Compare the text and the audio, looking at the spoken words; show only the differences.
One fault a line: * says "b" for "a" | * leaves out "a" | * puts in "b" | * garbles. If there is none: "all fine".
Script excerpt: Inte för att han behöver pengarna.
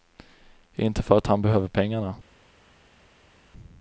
all fine